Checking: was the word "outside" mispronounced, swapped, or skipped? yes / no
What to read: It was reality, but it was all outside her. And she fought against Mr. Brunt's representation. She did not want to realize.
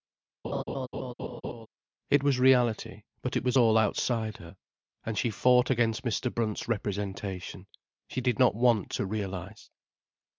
no